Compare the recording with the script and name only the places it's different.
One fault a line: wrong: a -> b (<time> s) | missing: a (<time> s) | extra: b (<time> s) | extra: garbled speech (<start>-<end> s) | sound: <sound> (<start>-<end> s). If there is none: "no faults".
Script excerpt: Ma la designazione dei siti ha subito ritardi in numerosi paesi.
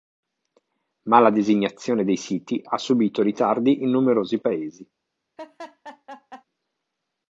sound: laugh (5.4-6.4 s)